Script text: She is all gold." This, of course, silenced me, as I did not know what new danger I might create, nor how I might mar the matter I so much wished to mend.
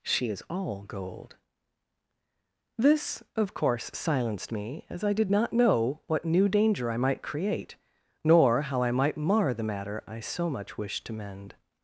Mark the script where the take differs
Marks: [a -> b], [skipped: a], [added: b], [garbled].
She is all gold." This, of course, silenced me, as I did not know what new danger I might create, nor how I might mar the matter I so much wished to mend.